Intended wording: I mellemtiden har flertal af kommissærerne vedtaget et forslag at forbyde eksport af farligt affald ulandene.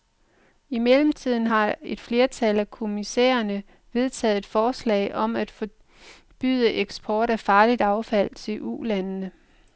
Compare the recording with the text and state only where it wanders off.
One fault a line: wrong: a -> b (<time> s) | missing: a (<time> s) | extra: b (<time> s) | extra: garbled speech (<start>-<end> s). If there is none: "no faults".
extra: et (1.8 s)
extra: om (5.2 s)
extra: til (8.4 s)